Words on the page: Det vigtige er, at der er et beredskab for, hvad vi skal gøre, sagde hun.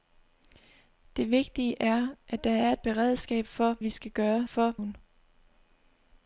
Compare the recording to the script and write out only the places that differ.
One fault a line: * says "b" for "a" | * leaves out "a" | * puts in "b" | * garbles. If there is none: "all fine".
* leaves out "hvad"
* says "for" for "sagde"